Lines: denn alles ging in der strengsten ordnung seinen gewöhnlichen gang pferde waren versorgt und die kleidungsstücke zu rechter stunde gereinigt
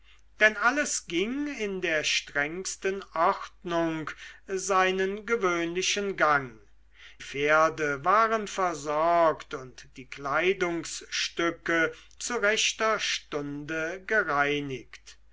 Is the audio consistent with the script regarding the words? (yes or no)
yes